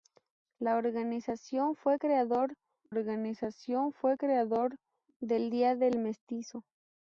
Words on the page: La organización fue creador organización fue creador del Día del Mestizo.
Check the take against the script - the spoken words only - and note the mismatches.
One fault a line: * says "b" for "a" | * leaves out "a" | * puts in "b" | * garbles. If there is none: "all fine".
all fine